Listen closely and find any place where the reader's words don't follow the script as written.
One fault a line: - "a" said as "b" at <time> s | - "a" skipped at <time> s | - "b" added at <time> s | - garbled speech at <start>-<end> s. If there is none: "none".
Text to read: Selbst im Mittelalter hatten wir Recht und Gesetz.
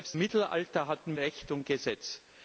- "im" skipped at 0.2 s
- "wir" skipped at 1.1 s